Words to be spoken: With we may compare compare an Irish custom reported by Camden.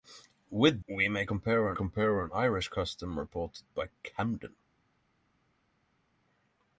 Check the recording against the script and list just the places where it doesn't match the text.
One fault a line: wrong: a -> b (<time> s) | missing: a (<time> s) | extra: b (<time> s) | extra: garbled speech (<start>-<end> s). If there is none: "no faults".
no faults